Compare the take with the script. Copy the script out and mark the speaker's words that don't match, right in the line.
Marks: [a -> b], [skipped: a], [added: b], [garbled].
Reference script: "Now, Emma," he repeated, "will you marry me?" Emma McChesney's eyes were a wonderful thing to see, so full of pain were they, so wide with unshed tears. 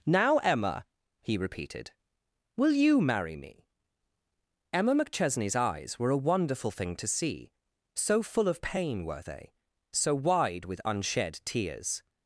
"Now, Emma," he repeated, "will you marry me?" Emma McChesney's eyes were a wonderful thing to see, so full of pain were they, so wide with unshed tears.